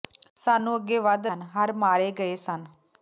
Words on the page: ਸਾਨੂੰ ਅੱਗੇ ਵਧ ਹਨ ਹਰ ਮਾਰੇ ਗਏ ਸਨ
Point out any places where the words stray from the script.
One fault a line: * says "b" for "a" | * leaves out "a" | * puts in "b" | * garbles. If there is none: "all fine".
all fine